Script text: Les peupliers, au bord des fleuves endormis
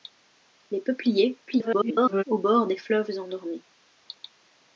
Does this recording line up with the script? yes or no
no